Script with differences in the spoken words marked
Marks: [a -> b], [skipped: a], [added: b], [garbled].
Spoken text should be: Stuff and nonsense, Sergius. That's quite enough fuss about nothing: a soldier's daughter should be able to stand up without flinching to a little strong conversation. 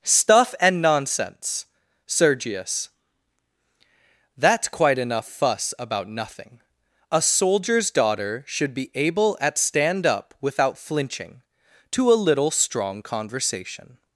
Stuff and nonsense, Sergius. That's quite enough fuss about nothing: a soldier's daughter should be able [to -> at] stand up without flinching to a little strong conversation.